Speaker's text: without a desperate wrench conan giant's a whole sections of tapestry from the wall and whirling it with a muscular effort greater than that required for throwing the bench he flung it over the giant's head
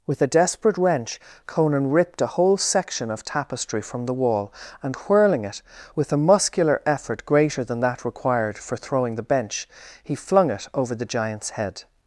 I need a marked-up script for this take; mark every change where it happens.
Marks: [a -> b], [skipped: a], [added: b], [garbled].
[without -> with] a desperate wrench conan [giant's -> ripped] a whole [sections -> section] of tapestry from the wall and whirling it with a muscular effort greater than that required for throwing the bench he flung it over the giant's head